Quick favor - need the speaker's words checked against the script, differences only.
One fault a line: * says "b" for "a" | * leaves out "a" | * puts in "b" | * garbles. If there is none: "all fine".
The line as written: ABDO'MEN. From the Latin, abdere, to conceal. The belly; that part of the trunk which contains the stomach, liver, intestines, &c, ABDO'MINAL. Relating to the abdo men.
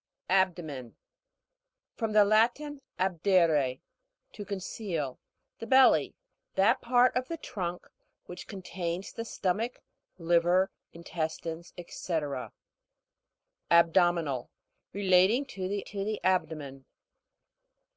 * puts in "to the"